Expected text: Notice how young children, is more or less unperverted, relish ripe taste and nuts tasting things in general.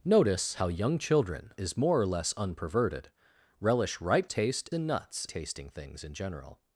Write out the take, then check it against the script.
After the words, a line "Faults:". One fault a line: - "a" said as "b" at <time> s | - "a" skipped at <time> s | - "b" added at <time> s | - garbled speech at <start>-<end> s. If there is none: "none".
Notice how young children, is more or less unperverted, relish ripe taste and nuts tasting things in general.
Faults:
none